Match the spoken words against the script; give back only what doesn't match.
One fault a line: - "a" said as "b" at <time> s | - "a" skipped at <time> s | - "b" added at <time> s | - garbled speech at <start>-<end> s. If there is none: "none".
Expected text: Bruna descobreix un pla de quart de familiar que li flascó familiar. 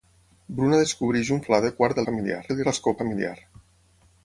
none